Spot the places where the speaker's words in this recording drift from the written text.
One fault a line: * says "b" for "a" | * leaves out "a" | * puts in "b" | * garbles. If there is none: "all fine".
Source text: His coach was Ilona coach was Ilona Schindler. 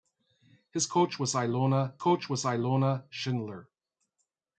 all fine